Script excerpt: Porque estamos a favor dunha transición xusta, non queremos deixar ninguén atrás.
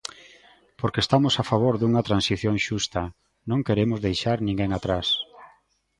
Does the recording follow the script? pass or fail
pass